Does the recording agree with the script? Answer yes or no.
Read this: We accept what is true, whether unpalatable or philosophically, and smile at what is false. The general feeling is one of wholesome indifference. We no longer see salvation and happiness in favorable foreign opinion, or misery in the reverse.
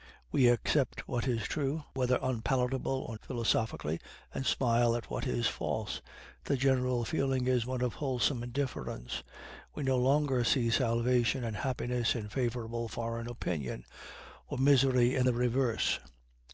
yes